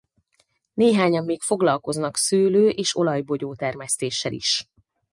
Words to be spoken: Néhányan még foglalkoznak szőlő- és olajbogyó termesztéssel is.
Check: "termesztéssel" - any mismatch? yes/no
no